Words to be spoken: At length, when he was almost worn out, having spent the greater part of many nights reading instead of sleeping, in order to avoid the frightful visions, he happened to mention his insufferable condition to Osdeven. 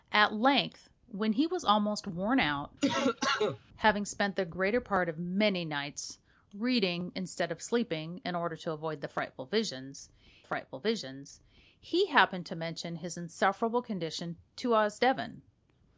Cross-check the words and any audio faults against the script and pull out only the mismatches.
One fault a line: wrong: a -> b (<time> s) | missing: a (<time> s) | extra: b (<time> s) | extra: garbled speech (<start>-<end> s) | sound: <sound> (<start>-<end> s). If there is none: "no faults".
sound: cough (2.8-3.6 s)
extra: frightful visions (10.4 s)